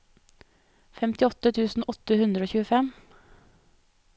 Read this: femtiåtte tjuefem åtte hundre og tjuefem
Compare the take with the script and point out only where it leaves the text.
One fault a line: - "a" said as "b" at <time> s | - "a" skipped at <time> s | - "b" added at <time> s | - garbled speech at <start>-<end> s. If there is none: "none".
- "tjuefem" said as "tusen" at 1.6 s